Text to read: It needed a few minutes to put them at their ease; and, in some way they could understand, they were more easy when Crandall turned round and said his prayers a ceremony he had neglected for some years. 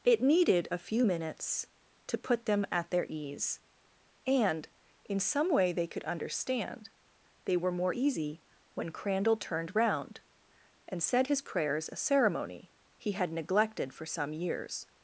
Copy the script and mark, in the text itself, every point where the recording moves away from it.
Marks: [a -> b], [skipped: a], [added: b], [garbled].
It needed a few minutes to put them at their ease; and, in some way they could understand, they were more easy when Crandall turned round and said his prayers a ceremony he had neglected for some years.